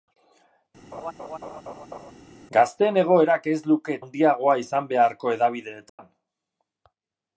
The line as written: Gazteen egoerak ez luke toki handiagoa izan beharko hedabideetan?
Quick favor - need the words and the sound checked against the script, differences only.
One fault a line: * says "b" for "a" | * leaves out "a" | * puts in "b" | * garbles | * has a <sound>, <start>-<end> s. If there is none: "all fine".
* has a laugh, 0.9-2.1 s
* leaves out "toki"
* has a dropout, 5.9-6.0 s